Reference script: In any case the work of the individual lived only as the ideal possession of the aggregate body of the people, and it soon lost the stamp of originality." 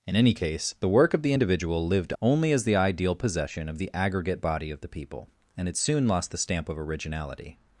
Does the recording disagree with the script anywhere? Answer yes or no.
no